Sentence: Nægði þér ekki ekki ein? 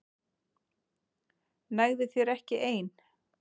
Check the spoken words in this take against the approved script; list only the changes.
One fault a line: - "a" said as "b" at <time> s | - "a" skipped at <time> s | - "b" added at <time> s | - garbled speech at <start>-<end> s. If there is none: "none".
- "ekki" skipped at 2.6 s